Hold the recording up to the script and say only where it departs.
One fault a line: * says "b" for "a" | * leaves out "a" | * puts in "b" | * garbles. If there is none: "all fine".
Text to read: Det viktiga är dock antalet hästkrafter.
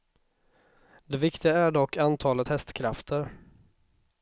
all fine